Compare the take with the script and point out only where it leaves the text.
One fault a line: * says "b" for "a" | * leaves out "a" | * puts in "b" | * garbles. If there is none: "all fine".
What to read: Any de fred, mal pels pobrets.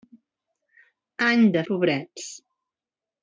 * leaves out "fred mal pels"